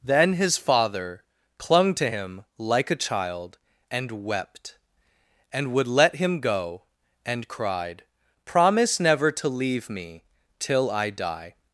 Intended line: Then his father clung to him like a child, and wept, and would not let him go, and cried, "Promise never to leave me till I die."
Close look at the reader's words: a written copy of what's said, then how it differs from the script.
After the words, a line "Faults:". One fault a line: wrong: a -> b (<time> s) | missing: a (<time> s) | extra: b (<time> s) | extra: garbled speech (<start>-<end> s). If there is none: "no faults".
Then his father clung to him like a child, and wept, and would let him go, and cried, "Promise never to leave me till I die."
Faults:
missing: not (5.9 s)